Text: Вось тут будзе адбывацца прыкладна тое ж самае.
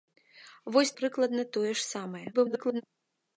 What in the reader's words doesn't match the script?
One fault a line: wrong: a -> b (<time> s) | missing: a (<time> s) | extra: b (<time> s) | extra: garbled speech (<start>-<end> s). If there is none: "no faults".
missing: тут будзе адбывацца (0.9 s)
extra: garbled speech (2.3-2.8 s)